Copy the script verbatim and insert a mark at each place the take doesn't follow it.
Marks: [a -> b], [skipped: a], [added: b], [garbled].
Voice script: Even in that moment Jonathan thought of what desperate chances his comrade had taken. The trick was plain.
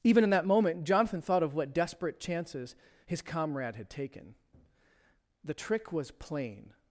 Even in that moment Jonathan thought of what desperate chances his comrade had taken. The trick was plain.